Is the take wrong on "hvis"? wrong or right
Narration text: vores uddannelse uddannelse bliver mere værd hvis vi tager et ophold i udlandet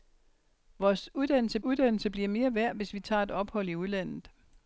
right